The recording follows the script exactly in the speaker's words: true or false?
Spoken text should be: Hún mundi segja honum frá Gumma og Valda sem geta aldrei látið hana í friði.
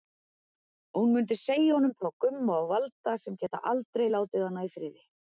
true